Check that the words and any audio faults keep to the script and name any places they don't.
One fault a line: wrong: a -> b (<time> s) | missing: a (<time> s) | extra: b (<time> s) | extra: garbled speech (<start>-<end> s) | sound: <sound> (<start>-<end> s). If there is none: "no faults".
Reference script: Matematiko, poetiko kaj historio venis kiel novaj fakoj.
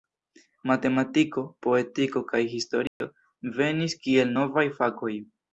sound: dropout (2.9-3.0 s)